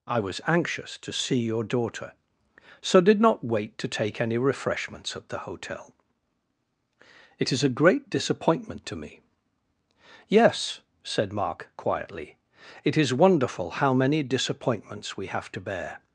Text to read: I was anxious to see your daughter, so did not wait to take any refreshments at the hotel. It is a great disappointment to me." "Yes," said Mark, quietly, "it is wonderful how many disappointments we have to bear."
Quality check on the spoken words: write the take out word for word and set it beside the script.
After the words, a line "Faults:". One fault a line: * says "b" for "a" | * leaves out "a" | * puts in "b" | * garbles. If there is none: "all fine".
I was anxious to see your daughter, so did not wait to take any refreshments at the hotel. It is a great disappointment to me." "Yes," said Mark, quietly, "it is wonderful how many disappointments we have to bear."
Faults:
all fine